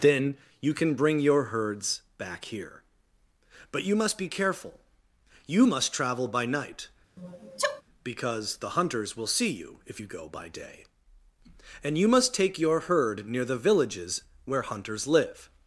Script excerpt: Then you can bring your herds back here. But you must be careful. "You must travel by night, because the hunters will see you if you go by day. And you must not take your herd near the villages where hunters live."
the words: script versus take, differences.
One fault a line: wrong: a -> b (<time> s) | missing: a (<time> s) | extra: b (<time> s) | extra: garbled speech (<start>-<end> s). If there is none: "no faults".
missing: not (12.3 s)